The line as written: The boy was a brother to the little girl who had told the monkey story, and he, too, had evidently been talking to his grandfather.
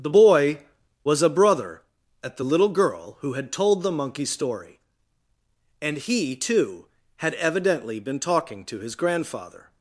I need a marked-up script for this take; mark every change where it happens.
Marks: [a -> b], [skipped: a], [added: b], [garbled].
The boy was a brother [to -> at] the little girl who had told the monkey story, and he, too, had evidently been talking to his grandfather.